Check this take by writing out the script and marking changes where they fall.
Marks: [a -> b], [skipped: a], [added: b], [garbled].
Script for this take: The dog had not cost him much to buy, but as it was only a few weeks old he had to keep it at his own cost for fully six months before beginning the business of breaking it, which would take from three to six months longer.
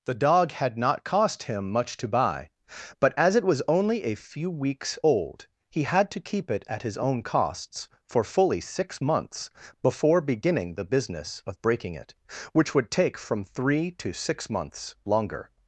The dog had not cost him much to buy, but as it was only a few weeks old he had to keep it at his own [cost -> costs] for fully six months before beginning the business of breaking it, which would take from three to six months longer.